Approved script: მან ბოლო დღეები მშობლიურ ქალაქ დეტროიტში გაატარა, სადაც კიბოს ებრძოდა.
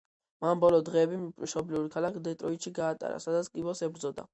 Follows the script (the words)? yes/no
yes